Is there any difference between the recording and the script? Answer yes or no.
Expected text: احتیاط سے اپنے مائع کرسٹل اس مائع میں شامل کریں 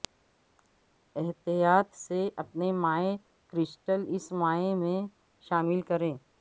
no